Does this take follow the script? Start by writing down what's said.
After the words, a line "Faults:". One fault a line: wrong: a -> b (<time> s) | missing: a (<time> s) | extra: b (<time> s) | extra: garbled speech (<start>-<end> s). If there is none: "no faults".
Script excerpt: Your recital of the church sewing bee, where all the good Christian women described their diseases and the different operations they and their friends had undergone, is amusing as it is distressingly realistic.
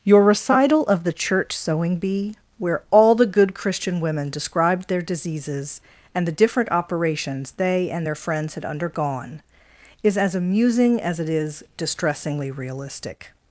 Your recital of the church sewing bee, where all the good Christian women described their diseases and the different operations they and their friends had undergone, is as amusing as it is distressingly realistic.
Faults:
extra: as (10.2 s)